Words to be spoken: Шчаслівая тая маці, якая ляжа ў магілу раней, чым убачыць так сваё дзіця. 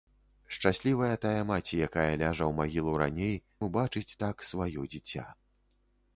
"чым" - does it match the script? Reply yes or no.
no